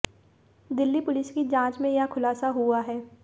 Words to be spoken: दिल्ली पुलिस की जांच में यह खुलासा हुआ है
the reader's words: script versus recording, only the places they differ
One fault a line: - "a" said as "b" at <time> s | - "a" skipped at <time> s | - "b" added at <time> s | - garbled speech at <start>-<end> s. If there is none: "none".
none